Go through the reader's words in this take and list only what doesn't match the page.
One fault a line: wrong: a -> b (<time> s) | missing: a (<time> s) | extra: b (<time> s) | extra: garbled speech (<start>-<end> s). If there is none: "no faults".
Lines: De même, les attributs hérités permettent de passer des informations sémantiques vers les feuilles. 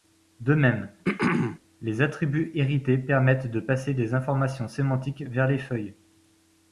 no faults